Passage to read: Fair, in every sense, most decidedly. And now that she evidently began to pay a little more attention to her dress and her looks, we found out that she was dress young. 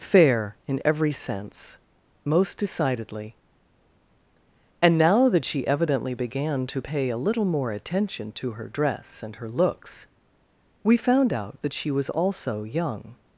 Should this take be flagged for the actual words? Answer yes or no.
yes